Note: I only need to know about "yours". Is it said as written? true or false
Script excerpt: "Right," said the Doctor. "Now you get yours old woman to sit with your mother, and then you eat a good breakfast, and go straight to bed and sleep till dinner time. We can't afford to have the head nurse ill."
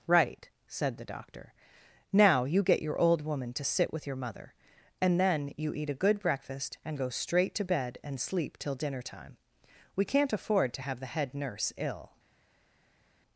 false